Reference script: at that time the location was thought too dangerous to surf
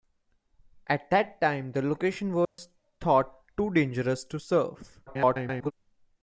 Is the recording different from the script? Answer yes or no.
yes